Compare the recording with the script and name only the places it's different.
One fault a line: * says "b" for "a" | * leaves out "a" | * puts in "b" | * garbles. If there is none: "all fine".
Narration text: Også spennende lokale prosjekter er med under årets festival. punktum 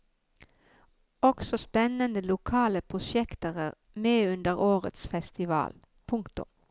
all fine